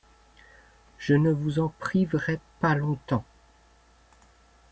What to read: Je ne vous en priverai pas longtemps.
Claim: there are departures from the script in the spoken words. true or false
false